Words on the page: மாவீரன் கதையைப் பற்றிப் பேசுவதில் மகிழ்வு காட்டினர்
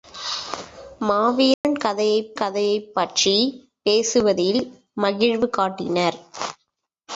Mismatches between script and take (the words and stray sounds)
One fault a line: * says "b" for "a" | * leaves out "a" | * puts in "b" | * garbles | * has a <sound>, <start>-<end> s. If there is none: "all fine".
* has a dropout, 1.5-1.6 s
* puts in "கதையைப்"